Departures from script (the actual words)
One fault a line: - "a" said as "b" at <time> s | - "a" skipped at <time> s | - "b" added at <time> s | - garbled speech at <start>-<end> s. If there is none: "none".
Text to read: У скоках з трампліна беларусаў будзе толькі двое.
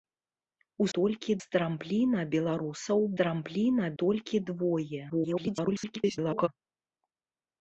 - "скоках" said as "толькі" at 1.0 s
- "будзе" said as "трампліна" at 3.2 s
- garbled speech at 5.1-6.5 s